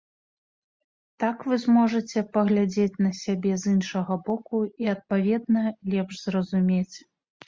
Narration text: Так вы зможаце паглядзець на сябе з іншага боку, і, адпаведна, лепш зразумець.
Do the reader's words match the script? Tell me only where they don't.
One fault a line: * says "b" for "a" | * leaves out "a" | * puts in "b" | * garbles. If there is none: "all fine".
all fine